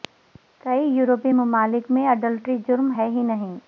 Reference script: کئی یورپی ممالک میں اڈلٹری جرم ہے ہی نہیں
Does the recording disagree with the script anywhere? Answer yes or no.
no